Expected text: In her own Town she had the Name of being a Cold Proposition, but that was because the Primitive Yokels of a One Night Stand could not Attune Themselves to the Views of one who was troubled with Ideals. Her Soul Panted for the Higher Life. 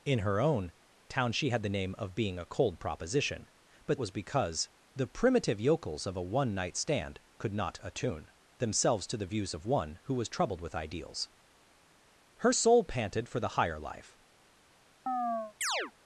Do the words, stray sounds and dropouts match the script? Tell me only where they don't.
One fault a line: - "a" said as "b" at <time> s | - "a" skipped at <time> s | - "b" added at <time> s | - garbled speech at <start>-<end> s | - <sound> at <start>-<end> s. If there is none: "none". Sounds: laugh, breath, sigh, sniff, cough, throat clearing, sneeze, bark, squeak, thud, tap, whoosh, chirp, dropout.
- "that" skipped at 4.0 s
- chirp at 15.1-15.9 s